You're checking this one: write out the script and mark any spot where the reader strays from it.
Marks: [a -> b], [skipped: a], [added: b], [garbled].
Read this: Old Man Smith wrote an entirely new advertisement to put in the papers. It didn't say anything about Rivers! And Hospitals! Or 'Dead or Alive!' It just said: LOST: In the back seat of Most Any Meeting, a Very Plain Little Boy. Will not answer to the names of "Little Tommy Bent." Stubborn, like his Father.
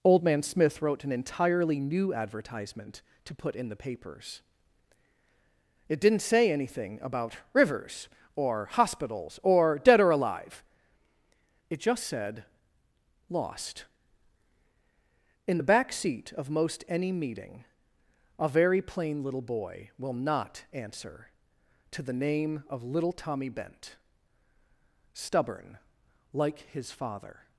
Old Man Smith wrote an entirely new advertisement to put in the papers. It didn't say anything about Rivers! [And -> Or] Hospitals! Or 'Dead or Alive!' It just said: LOST: In the back seat of Most Any Meeting, a Very Plain Little Boy. Will not answer to the [names -> name] of "Little Tommy Bent." Stubborn, like his Father.